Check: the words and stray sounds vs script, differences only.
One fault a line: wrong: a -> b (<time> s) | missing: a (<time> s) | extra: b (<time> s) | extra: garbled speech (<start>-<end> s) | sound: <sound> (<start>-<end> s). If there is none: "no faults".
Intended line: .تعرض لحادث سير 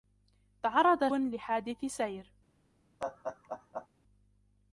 sound: laugh (3.0-3.9 s)